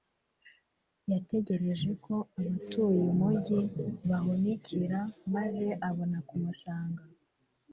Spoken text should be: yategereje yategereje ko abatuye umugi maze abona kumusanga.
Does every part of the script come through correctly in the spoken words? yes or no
no